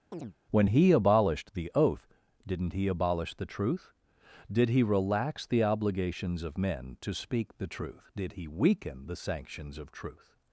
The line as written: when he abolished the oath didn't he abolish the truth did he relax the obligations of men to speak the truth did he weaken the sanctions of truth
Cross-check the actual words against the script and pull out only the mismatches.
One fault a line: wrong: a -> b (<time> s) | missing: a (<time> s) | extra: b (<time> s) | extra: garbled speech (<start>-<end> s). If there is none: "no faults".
no faults